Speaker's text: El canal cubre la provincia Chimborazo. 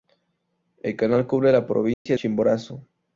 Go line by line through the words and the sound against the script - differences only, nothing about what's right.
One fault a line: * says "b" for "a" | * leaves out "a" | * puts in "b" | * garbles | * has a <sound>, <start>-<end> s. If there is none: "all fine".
* has a dropout, 1.9-2.1 s